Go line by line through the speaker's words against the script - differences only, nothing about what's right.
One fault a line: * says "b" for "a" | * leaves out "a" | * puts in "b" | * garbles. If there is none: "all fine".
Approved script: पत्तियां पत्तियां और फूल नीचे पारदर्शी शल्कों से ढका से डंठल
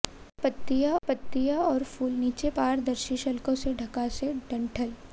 all fine